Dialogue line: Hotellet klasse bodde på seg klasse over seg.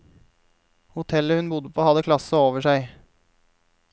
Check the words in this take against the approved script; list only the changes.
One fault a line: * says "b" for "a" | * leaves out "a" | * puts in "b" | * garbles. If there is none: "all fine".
* says "hun" for "klasse"
* says "hadde" for "seg"